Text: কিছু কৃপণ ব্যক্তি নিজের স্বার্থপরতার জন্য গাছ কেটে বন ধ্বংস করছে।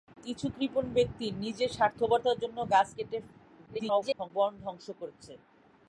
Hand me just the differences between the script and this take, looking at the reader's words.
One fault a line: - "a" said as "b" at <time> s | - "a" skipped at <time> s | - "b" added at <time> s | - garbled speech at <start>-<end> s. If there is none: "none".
- garbled speech at 3.7-4.3 s